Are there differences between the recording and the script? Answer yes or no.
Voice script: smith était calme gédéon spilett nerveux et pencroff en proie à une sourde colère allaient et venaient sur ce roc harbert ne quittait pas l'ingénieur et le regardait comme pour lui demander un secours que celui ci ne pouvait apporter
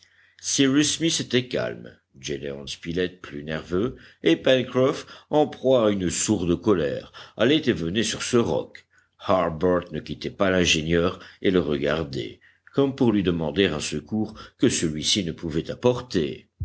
yes